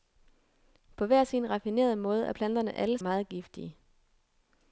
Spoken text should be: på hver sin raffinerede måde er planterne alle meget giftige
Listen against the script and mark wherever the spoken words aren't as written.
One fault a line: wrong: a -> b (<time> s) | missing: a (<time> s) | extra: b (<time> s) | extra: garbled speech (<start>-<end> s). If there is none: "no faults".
no faults